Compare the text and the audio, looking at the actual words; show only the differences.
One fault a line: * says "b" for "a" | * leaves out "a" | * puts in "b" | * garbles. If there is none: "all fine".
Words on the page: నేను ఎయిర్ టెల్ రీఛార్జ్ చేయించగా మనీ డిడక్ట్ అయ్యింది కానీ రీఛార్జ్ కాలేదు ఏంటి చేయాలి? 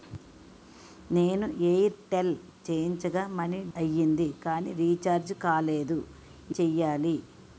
* leaves out "రీఛార్జ్"
* leaves out "డిడక్ట్"
* leaves out "ఏంటి"